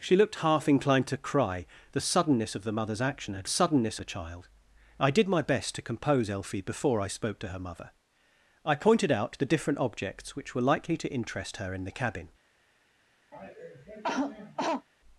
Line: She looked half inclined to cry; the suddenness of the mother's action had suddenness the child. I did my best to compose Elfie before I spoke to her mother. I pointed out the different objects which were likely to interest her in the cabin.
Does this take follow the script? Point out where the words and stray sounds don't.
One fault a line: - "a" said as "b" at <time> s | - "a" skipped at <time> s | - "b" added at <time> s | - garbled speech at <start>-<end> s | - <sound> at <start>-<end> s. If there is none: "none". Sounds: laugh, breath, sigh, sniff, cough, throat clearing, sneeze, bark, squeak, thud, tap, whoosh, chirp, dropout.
- cough at 13.3-14.9 s